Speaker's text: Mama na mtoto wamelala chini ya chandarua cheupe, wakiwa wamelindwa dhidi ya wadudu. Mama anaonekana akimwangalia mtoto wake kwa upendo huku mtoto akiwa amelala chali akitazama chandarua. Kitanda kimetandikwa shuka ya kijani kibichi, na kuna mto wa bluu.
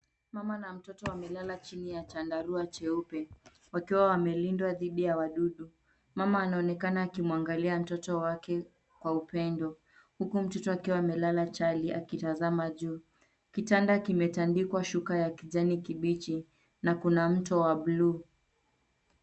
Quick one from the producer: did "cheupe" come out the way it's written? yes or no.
yes